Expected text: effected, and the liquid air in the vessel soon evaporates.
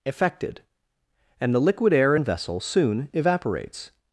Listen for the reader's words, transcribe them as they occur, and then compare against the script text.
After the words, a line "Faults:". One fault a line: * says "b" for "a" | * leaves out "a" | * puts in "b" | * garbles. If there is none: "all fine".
effected, and the liquid air in vessel soon evaporates.
Faults:
* leaves out "the"